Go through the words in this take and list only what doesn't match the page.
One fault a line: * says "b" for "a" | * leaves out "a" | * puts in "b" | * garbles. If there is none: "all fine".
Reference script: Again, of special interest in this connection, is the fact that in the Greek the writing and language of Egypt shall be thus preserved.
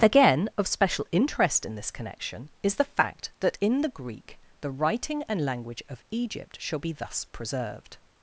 all fine